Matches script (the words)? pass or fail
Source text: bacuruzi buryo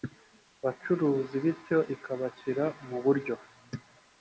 fail